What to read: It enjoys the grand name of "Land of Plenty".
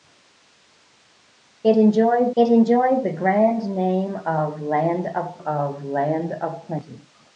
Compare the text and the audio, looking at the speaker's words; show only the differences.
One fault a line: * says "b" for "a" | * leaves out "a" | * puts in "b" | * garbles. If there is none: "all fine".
* puts in "it enjoys"
* puts in "of Land of"